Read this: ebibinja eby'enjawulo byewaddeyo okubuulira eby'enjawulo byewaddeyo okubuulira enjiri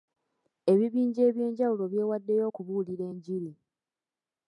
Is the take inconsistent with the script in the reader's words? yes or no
yes